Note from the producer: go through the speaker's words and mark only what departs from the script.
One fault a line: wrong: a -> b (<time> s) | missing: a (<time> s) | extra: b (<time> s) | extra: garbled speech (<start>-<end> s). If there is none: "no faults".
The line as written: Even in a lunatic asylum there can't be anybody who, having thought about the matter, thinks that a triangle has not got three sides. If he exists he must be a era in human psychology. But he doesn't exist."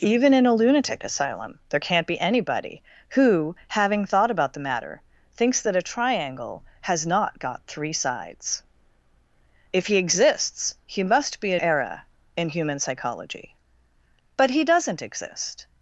no faults